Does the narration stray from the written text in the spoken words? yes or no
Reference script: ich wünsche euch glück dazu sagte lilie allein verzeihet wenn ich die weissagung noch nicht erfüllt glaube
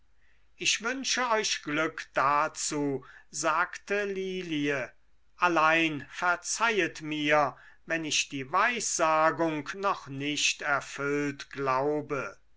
yes